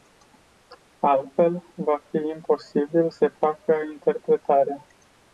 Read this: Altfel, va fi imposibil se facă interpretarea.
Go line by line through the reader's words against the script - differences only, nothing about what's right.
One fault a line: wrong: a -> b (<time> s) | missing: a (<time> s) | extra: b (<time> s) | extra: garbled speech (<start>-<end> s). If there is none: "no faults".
no faults